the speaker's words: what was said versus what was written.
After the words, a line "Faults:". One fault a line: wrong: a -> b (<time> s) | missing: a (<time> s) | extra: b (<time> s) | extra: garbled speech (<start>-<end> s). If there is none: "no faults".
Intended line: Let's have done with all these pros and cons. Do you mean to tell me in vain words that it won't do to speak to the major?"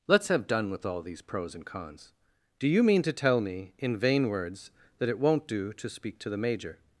Let's have done with all these pros and cons. Do you mean to tell me in vain words that it won't do to speak to the major?"
Faults:
no faults